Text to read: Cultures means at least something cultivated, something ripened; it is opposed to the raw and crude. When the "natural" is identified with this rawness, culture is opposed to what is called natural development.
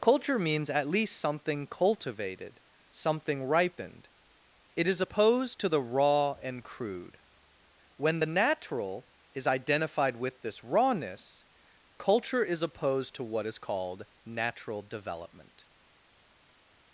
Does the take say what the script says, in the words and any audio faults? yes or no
no